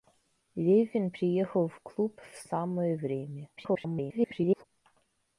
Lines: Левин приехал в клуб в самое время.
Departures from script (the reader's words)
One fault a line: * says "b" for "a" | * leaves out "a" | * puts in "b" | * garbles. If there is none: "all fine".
* garbles